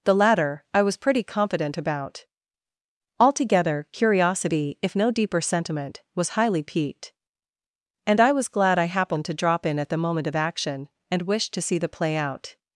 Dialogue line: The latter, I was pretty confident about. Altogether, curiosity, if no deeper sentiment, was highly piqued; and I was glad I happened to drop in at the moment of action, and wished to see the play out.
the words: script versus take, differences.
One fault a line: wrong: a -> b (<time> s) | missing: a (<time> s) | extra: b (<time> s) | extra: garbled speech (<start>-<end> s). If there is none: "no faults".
no faults